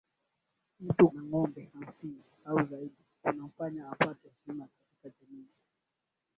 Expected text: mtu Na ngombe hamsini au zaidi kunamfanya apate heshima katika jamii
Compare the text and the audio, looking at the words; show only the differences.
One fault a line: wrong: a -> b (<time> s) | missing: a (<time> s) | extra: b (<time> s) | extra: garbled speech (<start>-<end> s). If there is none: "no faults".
no faults